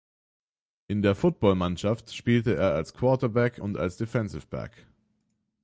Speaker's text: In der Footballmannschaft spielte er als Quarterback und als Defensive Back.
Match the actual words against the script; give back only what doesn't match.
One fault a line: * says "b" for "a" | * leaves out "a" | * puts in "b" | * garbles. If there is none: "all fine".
all fine